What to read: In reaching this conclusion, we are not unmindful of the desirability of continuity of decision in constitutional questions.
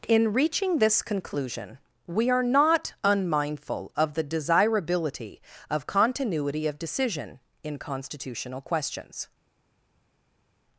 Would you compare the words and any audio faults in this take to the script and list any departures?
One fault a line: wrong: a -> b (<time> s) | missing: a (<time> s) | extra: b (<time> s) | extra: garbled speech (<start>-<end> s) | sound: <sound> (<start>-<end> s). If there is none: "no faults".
no faults